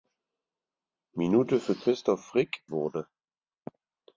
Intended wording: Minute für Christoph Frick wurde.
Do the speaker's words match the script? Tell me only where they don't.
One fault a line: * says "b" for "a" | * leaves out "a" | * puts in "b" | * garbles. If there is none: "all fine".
all fine